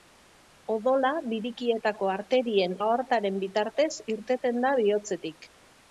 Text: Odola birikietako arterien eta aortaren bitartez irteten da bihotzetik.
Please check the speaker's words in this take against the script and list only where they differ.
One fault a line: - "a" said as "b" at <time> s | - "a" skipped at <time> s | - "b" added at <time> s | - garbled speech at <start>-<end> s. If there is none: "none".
- "eta" skipped at 2.7 s